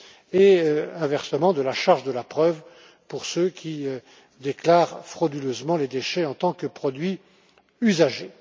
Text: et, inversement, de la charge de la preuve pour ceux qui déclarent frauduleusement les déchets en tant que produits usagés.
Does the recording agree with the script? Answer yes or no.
yes